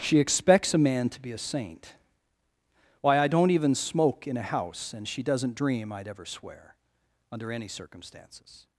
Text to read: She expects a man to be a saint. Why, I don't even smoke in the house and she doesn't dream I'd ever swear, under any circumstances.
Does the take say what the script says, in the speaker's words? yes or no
no